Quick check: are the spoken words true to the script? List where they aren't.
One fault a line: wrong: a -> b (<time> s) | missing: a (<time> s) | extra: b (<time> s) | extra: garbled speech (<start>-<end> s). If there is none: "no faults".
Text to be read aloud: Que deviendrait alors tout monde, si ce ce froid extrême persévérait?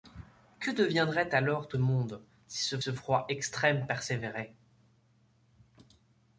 no faults